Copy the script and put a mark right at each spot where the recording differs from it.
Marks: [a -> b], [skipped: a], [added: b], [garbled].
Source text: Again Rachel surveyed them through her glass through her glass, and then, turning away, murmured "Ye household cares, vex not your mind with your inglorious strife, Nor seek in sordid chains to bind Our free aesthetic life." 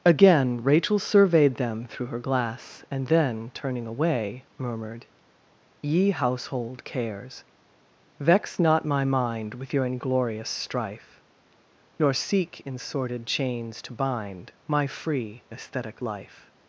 Again Rachel surveyed them through her glass [skipped: through her glass,] and then, turning away, murmured "Ye household cares, vex not [your -> my] mind with your inglorious strife, Nor seek in sordid chains to bind [Our -> My] free aesthetic life."